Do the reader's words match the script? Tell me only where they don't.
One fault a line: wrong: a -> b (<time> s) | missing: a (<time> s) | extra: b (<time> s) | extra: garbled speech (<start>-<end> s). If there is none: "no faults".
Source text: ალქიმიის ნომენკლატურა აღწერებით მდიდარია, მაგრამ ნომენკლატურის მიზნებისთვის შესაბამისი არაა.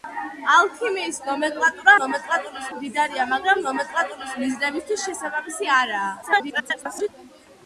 wrong: აღწერებით -> ნომენკლატურის (2.0 s)
extra: garbled speech (6.2-7.1 s)